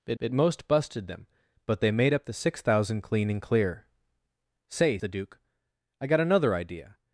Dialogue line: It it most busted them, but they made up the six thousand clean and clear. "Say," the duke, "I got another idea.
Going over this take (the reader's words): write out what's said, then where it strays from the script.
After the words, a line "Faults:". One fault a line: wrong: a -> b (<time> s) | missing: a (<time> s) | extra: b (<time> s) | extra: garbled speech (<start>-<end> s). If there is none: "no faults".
It it most busted them, but they made up the six thousand clean and clear. "Say," the duke, "I got another idea.
Faults:
no faults